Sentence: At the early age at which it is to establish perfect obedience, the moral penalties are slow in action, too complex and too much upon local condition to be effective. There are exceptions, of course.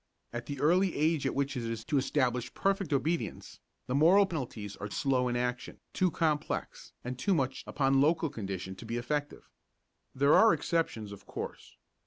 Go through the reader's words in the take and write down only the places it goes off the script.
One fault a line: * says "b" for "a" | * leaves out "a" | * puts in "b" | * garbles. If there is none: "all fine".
all fine